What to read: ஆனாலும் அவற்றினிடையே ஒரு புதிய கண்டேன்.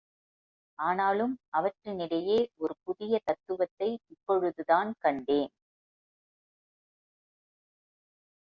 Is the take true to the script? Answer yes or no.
no